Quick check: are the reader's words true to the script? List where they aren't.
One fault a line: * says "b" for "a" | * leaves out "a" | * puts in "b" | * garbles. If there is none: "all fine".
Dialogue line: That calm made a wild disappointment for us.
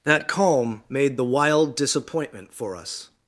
* says "the" for "a"